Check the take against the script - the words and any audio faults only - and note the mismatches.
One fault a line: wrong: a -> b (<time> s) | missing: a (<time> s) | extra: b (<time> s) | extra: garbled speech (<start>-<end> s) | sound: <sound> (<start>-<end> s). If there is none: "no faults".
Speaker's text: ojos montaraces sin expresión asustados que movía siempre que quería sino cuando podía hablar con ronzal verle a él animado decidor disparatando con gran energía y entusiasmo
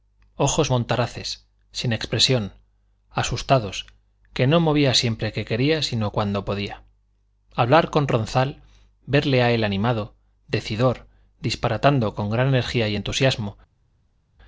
extra: no (4.5 s)